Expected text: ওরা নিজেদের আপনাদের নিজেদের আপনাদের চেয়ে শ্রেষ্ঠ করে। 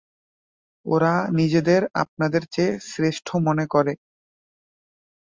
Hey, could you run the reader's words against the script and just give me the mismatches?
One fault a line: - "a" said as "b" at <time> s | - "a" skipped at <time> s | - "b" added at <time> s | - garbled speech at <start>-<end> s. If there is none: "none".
- "নিজেদের আপনাদের" skipped at 2.4 s
- "মনে" added at 3.5 s